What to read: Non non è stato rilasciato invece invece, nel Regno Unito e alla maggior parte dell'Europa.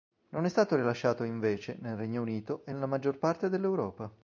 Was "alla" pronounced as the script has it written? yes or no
no